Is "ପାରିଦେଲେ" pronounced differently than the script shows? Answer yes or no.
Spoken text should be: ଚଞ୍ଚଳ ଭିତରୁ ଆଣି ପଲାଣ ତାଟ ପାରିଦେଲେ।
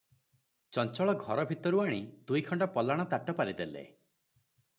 no